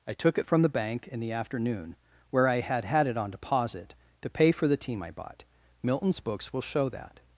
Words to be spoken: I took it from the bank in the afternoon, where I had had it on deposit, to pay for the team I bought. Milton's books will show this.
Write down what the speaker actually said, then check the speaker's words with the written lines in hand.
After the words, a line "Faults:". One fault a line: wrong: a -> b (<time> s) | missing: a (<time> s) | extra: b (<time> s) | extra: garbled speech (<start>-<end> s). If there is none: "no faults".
I took it from the bank in the afternoon, where I had had it on deposit, to pay for the team I bought. Milton's books will show that.
Faults:
wrong: this -> that (6.9 s)